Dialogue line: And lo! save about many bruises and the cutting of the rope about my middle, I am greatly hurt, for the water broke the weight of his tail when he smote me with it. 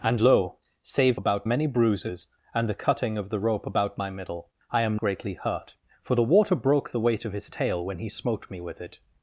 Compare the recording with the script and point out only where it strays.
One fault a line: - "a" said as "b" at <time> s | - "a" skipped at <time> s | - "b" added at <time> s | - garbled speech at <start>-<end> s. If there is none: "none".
none